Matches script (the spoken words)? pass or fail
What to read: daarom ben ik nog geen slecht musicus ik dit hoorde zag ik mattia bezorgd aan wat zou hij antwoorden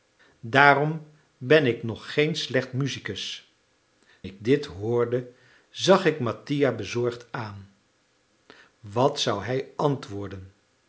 pass